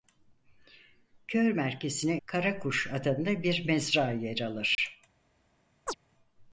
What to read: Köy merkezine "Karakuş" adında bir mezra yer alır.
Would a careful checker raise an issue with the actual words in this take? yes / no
no